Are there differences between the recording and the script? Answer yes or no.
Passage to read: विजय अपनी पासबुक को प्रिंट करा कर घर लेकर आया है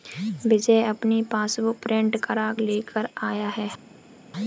yes